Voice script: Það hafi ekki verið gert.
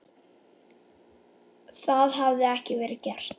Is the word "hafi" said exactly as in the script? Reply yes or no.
yes